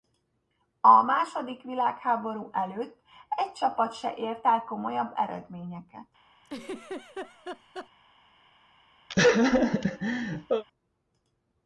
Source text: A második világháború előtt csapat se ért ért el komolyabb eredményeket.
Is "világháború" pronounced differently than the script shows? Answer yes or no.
no